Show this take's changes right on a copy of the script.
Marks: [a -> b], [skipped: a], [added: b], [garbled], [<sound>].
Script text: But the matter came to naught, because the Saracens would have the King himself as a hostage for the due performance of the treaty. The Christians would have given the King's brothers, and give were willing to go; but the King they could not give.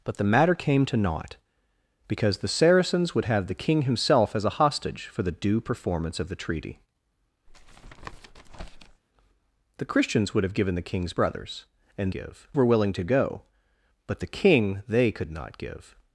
But the matter came to naught, because the Saracens would have the King himself as a hostage for the due performance of the treaty. [tap] The Christians would have given the King's brothers, and give were willing to go; but the King they could not give.